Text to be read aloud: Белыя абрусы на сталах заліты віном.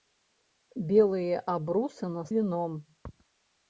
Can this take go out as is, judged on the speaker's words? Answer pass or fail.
fail